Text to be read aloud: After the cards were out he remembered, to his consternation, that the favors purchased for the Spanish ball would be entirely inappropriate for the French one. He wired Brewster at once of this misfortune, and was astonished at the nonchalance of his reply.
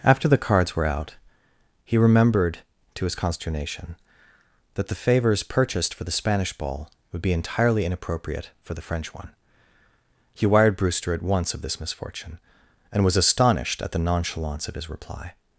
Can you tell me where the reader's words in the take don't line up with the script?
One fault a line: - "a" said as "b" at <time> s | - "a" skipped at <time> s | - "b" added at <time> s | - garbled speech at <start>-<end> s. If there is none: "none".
none